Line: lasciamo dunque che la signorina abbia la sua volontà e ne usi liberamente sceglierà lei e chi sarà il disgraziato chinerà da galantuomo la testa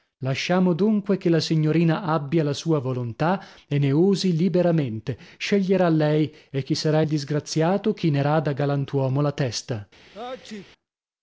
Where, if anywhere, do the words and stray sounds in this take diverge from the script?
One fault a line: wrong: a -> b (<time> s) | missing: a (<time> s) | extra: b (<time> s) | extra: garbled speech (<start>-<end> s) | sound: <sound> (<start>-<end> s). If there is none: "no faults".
sound: sneeze (10.1-10.7 s)